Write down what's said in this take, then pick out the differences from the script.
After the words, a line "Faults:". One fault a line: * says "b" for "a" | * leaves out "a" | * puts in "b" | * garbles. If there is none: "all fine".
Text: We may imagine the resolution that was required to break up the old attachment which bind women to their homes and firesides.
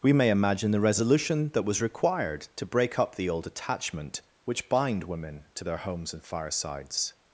We may imagine the resolution that was required to break up the old attachment which bind women to their homes and firesides.
Faults:
all fine